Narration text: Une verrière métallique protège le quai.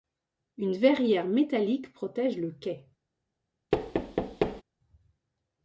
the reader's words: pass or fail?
pass